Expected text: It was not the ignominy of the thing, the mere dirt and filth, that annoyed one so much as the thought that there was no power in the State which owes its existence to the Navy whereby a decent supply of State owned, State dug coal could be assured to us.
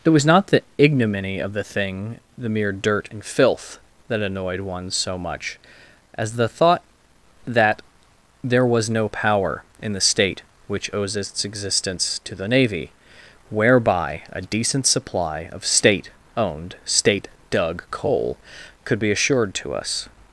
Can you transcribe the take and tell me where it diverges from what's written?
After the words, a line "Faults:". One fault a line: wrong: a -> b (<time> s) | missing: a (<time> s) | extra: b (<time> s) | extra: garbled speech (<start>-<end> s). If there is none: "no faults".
It was not the ignominy of the thing, the mere dirt and filth, that annoyed one so much as the thought that there was no power in the State which owes its existence to the Navy whereby a decent supply of State owned, State dug coal could be assured to us.
Faults:
no faults